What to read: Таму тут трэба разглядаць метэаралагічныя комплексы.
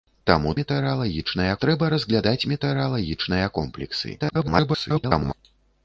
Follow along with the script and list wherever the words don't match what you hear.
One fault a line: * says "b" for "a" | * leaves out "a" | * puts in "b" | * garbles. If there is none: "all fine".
* says "метэаралагічныя" for "тут"
* garbles